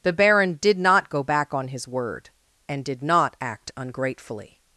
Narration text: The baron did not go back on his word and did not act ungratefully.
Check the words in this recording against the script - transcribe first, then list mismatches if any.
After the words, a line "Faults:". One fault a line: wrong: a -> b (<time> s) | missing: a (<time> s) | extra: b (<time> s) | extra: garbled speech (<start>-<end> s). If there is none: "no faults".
The baron did not go back on his word and did not act ungratefully.
Faults:
no faults